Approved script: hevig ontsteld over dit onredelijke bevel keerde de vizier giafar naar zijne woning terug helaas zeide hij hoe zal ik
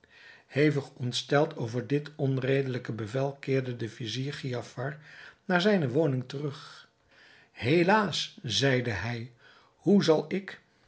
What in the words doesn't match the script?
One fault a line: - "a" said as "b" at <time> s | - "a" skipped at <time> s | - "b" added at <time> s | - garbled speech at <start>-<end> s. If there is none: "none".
none